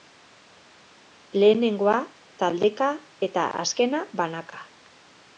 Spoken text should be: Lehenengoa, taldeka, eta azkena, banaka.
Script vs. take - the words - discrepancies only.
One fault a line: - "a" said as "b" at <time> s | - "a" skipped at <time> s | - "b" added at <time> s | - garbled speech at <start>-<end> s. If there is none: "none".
none